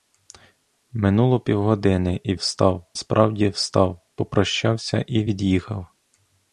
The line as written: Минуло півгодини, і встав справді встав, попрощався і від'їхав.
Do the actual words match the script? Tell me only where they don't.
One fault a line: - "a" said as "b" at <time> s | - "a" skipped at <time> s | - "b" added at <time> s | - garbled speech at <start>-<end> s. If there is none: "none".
none